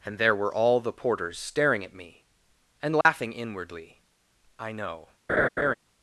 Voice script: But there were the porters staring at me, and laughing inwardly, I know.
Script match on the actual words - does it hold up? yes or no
no